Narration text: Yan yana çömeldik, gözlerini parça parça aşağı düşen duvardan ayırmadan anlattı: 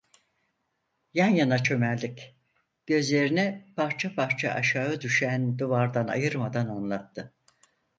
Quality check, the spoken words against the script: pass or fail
pass